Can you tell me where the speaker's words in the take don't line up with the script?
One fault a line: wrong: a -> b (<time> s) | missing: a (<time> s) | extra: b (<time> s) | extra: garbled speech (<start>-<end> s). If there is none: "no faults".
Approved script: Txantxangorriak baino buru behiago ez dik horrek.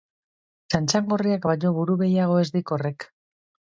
no faults